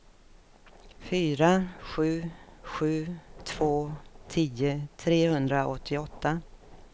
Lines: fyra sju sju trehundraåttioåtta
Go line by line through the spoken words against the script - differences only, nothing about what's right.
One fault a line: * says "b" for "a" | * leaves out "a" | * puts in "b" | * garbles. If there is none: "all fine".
* puts in "två tio"